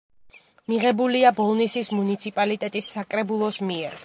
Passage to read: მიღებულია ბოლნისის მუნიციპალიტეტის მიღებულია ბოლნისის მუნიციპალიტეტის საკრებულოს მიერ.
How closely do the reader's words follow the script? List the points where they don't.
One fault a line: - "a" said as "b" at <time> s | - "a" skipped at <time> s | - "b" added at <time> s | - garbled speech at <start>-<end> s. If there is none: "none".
- "მიღებულია ბოლნისის მუნიციპალიტეტის" skipped at 2.9 s